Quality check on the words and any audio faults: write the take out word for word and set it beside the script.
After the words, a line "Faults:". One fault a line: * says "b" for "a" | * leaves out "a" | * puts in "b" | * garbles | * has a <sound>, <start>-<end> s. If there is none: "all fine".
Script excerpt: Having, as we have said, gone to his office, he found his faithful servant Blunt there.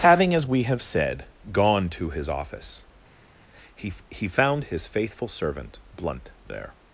Having, as we have said, gone to his office, he he found his faithful servant Blunt there.
Faults:
* puts in "he"